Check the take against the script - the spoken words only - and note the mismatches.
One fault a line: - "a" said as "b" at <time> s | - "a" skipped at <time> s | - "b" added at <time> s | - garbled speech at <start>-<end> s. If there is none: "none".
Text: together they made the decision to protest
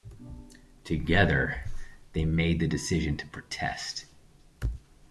none